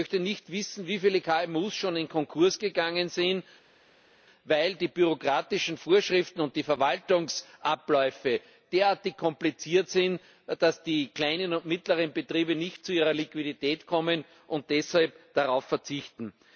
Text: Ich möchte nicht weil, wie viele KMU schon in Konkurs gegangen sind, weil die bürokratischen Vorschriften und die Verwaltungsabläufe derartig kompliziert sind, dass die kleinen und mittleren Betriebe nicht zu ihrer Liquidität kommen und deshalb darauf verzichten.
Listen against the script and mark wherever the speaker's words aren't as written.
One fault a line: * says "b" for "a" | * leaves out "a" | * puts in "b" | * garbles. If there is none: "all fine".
* says "wissen" for "weil"